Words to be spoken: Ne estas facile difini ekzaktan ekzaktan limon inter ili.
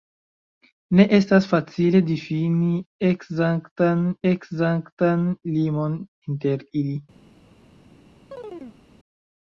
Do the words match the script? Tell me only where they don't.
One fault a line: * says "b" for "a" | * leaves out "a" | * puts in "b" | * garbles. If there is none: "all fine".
all fine